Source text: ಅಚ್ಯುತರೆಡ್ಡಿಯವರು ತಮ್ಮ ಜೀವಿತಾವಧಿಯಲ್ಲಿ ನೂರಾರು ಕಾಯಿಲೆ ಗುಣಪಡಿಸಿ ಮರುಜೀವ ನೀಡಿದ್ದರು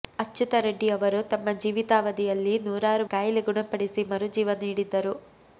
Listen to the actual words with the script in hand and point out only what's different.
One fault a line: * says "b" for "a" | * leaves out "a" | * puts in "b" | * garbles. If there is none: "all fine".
all fine